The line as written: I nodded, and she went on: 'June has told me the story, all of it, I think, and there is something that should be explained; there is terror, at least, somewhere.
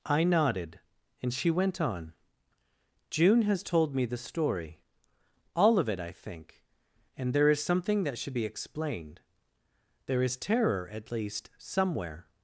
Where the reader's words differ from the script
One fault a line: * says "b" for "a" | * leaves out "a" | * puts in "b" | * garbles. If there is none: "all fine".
all fine